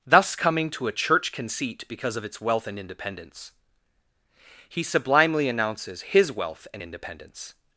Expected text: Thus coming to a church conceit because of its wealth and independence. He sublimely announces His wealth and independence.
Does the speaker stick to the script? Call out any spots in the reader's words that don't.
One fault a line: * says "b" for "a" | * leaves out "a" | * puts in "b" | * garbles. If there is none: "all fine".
all fine